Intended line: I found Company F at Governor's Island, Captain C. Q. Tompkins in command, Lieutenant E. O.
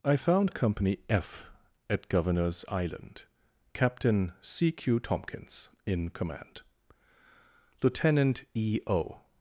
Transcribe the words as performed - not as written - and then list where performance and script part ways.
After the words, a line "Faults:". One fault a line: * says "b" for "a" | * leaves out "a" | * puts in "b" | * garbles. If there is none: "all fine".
I found Company F at Governor's Island, Captain C. Q. Tompkins in command, Lieutenant E. O.
Faults:
all fine